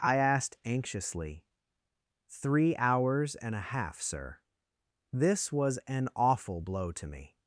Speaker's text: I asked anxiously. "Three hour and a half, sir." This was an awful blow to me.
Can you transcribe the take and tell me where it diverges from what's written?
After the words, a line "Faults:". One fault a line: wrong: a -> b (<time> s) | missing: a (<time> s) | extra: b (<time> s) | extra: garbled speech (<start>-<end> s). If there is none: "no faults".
I asked anxiously. "Three hours and a half, sir." This was an awful blow to me.
Faults:
wrong: hour -> hours (2.8 s)